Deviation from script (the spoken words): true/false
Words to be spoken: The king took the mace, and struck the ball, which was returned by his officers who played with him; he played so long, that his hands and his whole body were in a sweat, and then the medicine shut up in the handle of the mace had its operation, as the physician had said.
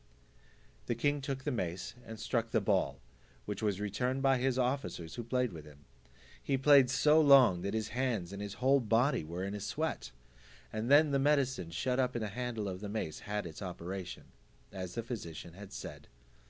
false